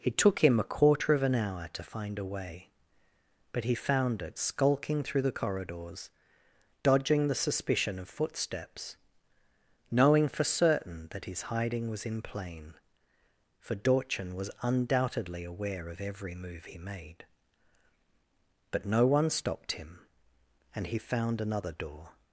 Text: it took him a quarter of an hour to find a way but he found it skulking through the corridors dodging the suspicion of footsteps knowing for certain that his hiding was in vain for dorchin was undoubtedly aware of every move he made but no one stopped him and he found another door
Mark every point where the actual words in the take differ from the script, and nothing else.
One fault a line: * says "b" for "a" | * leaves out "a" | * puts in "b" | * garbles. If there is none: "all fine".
* says "plain" for "vain"